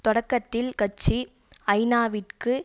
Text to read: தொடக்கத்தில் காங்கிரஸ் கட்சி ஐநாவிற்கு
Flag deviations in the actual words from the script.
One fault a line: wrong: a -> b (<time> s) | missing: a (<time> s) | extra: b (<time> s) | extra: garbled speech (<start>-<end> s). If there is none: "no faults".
missing: காங்கிரஸ் (0.7 s)